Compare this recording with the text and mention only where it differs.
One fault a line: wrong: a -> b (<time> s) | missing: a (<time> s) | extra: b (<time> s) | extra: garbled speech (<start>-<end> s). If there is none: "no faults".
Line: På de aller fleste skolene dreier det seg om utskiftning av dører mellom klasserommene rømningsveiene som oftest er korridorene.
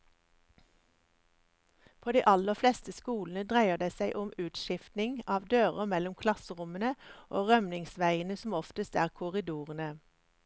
extra: og (7.3 s)